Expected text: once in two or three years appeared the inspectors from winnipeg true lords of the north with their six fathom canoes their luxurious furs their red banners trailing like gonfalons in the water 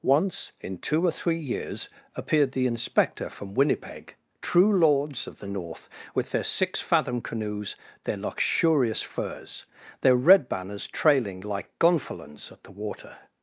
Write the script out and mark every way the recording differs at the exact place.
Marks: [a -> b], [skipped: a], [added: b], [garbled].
once in two or three years appeared the [inspectors -> inspector] from winnipeg true lords of the north with their six fathom canoes their luxurious furs their red banners trailing like gonfalons [in -> at] the water